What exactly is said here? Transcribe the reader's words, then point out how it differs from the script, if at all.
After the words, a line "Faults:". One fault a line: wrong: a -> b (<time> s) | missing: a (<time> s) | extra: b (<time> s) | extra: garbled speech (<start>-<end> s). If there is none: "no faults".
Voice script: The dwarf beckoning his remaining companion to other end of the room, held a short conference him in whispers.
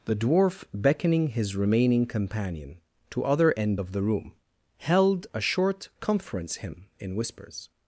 The dwarf beckoning his remaining companion to other end of the room, held a short conference him in whispers.
Faults:
no faults